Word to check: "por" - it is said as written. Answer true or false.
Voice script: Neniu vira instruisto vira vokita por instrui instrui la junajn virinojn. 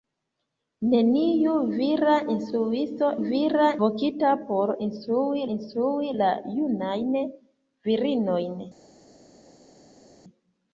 true